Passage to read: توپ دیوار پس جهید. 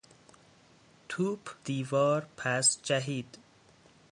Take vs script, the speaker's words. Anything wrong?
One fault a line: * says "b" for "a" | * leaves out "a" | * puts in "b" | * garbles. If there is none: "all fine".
all fine